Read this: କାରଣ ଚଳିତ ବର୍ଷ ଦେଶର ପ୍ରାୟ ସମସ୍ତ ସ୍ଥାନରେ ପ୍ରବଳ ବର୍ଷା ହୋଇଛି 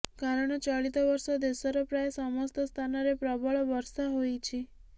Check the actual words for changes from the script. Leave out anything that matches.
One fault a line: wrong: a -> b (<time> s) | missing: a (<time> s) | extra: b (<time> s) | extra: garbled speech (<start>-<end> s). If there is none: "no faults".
no faults